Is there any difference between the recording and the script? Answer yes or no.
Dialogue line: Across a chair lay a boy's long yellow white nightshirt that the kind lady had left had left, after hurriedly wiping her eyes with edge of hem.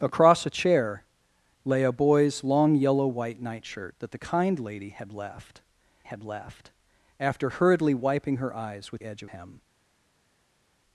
no